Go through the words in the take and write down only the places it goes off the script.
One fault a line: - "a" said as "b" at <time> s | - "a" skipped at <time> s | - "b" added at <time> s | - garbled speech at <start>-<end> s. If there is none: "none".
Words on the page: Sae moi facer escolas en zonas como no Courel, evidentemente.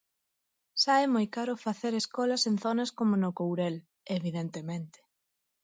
- "caro" added at 1.4 s